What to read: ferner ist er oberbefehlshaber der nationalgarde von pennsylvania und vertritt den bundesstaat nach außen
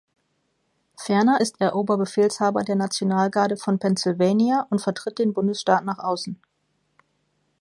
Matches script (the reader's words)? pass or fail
pass